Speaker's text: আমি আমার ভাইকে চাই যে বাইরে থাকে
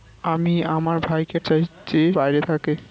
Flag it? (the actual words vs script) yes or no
no